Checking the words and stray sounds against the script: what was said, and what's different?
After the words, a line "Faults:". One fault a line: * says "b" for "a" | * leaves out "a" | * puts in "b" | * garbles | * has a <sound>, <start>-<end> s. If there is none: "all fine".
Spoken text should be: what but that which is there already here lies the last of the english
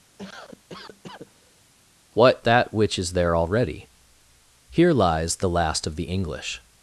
what that which is there already here lies the last of the english
Faults:
* has a cough, 0.2-1.6 s
* leaves out "but"